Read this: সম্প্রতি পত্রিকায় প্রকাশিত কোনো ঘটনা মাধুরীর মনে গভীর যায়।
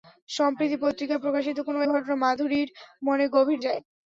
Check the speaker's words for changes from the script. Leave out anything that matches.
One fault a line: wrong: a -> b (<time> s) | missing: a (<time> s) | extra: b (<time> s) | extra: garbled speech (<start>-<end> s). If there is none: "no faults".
no faults